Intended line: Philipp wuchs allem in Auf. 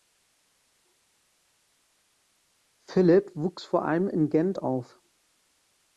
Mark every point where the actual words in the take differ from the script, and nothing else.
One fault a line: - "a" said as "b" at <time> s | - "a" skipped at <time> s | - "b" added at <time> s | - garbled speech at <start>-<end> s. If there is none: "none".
- "vor" added at 3.6 s
- "Gent" added at 4.3 s